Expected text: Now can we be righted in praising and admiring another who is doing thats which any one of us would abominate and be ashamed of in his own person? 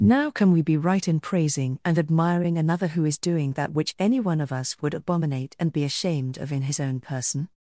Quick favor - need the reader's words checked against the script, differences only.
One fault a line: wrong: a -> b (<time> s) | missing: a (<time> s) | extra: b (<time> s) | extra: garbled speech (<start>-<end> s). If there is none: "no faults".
wrong: righted -> right (0.8 s)
wrong: thats -> that (3.5 s)